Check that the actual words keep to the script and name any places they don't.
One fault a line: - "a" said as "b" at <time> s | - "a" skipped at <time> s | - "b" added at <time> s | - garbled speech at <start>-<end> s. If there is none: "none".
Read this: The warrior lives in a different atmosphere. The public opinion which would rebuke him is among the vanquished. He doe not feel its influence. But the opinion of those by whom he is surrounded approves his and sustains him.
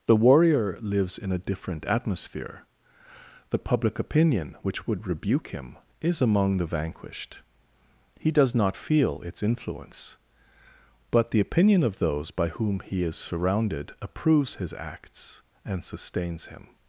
- "doe" said as "does" at 8.3 s
- "acts" added at 14.7 s